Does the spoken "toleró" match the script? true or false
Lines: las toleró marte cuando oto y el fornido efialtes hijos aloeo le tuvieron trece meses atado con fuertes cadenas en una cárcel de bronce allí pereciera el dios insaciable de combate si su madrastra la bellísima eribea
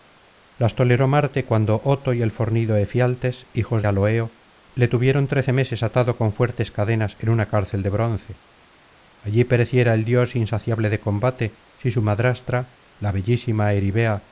true